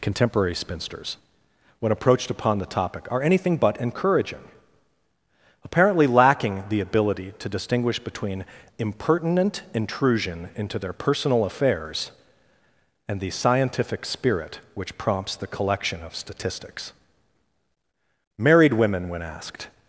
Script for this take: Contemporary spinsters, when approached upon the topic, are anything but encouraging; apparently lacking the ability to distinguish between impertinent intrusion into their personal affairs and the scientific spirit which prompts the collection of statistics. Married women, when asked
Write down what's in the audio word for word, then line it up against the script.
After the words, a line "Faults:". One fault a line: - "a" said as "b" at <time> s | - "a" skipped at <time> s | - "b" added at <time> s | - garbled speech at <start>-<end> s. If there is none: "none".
Contemporary spinsters, when approached upon the topic, are anything but encouraging; apparently lacking the ability to distinguish between impertinent intrusion into their personal affairs and the scientific spirit which prompts the collection of statistics. Married women, when asked
Faults:
none